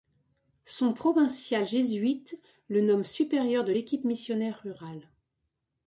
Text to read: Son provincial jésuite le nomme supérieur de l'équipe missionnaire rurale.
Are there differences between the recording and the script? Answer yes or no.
no